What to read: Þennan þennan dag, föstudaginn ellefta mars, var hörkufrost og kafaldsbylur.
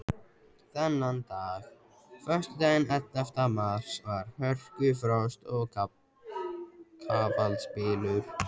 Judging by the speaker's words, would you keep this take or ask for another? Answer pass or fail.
fail